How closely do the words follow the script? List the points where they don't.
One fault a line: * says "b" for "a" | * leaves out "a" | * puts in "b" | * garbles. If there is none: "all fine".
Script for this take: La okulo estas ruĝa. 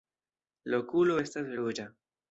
all fine